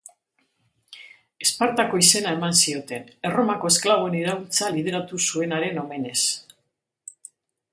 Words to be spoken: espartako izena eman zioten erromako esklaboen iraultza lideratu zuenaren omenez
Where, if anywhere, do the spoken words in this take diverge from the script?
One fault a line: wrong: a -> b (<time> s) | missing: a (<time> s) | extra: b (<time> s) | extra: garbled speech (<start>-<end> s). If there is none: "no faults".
no faults